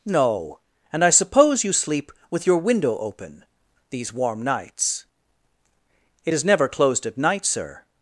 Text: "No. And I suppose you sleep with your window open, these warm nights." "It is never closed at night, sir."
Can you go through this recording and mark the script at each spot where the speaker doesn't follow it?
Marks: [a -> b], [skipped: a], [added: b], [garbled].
"No. And I suppose you sleep with your window open, these warm nights." "It is never closed at night, sir."